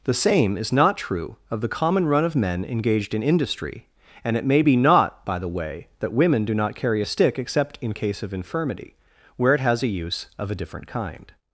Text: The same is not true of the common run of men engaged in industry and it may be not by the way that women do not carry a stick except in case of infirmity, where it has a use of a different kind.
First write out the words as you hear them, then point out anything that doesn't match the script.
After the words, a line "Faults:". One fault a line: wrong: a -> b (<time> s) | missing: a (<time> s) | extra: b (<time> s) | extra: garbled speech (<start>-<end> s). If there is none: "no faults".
The same is not true of the common run of men engaged in industry and it may be not by the way that women do not carry a stick except in case of infirmity, where it has a use of a different kind.
Faults:
no faults